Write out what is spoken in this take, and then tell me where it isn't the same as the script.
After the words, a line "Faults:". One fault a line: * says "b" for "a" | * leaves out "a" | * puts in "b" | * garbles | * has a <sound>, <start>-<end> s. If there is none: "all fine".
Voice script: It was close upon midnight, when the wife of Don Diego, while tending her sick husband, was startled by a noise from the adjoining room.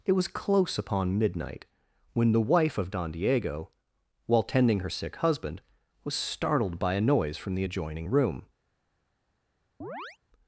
It was close upon midnight, when the wife of Don Diego, while tending her sick husband, was startled by a noise from the adjoining room.
Faults:
* has a chirp, 9.8-10.2 s